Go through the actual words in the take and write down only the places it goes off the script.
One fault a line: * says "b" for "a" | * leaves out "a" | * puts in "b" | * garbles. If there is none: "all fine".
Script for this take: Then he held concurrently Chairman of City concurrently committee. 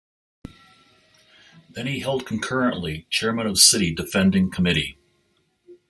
* says "defending" for "concurrently"